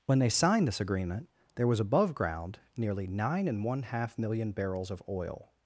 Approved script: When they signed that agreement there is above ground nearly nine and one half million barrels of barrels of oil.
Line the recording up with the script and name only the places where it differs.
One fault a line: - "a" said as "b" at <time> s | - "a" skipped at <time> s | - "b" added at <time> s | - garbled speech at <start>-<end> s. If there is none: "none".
- "that" said as "this" at 0.7 s
- "is" said as "was" at 1.7 s
- "barrels of" skipped at 5.0 s